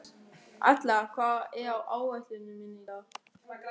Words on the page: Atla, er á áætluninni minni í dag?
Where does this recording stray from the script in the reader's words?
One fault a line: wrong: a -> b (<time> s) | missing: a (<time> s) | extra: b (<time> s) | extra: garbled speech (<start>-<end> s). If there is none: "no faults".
extra: hvað (1.2 s)